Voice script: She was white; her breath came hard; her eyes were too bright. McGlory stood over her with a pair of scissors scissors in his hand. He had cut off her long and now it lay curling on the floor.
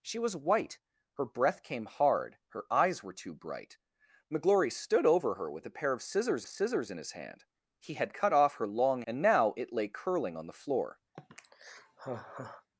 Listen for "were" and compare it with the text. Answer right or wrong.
right